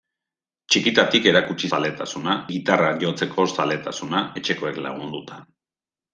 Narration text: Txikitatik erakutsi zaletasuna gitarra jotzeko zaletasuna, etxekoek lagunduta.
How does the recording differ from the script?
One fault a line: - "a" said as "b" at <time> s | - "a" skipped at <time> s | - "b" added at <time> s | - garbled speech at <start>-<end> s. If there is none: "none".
none